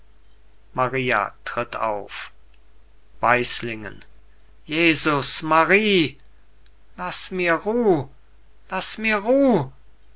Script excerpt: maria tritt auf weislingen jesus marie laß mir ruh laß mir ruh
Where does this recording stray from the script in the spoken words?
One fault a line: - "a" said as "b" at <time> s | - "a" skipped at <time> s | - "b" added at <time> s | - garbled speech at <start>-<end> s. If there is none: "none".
none